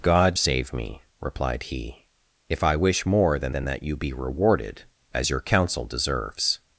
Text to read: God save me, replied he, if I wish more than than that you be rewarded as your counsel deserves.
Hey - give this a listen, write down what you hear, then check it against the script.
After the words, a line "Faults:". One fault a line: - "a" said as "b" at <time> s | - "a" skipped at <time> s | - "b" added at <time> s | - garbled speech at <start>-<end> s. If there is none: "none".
God save me, replied he, if I wish more than than that you be rewarded as your counsel deserves.
Faults:
none